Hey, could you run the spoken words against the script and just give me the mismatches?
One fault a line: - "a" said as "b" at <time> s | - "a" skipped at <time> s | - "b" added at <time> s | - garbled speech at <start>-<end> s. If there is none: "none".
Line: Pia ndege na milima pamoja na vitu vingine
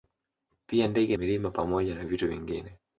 - "na" skipped at 1.2 s